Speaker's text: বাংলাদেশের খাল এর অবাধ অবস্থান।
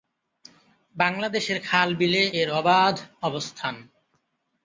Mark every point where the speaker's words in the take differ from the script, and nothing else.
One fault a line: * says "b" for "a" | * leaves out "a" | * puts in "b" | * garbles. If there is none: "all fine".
* puts in "বিলে"